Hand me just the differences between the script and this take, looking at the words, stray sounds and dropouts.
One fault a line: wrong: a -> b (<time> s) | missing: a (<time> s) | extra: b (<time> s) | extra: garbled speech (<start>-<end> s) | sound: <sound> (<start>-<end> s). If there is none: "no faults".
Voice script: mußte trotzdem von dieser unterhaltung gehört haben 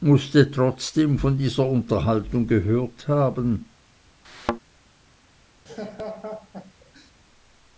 sound: thud (4.2-4.6 s)
sound: laugh (5.7-7.1 s)